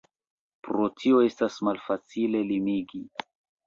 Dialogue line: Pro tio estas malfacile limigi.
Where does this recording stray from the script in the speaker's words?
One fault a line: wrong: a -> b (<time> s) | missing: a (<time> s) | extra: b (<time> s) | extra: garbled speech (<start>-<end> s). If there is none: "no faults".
no faults